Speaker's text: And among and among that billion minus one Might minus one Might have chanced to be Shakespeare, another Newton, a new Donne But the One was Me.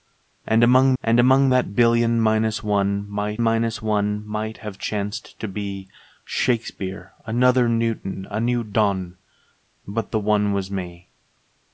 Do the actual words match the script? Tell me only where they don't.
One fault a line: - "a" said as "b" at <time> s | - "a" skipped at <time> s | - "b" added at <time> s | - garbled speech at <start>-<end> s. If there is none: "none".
none